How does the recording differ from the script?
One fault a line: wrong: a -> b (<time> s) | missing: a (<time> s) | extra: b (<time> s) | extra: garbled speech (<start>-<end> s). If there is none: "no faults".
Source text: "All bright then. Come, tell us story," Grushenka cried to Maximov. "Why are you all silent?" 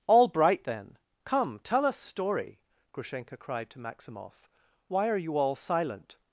no faults